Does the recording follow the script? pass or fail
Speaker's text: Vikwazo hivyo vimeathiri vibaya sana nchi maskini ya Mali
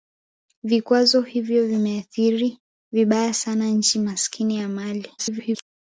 fail